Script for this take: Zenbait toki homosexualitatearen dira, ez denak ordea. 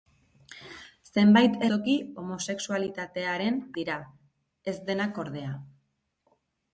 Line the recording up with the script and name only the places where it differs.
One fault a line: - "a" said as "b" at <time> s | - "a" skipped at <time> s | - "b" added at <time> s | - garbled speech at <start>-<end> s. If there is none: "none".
none